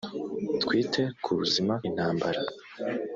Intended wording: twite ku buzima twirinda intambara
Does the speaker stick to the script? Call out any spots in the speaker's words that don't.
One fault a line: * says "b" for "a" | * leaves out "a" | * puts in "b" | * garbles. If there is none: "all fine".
* leaves out "twirinda"